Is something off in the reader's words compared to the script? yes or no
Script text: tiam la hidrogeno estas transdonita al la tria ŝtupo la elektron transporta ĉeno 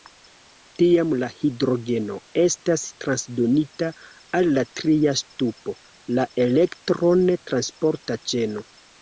no